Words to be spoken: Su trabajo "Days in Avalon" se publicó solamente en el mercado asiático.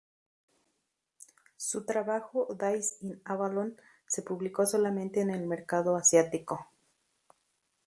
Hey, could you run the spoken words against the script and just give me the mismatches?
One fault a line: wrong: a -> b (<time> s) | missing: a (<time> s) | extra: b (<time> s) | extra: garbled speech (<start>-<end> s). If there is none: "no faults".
no faults